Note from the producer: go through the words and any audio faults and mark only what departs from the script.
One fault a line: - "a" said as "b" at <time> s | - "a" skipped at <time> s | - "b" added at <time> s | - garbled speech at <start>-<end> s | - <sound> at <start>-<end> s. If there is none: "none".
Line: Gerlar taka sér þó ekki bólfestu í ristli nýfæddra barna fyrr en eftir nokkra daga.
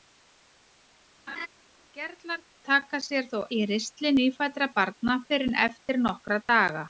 - laugh at 1.3-1.5 s
- "ekki bólfestu" skipped at 3.4 s